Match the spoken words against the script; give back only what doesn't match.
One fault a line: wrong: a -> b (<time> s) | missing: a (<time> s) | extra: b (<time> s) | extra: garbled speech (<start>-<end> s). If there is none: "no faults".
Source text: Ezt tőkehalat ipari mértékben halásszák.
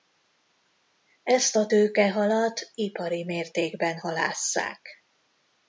extra: a (1.6 s)